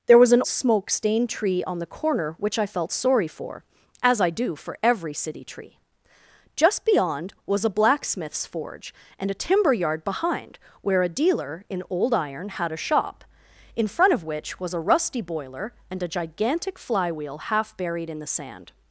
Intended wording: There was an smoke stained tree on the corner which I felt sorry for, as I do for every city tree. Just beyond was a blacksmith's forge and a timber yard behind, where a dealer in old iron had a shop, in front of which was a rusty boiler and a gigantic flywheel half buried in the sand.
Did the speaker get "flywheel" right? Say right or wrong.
right